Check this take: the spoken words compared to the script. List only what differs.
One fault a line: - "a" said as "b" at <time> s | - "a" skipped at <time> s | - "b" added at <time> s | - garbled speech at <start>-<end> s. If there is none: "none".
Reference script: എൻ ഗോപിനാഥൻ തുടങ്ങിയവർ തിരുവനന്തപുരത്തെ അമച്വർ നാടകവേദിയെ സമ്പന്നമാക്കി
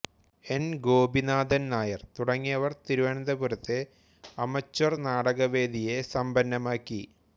- "നായർ" added at 1.7 s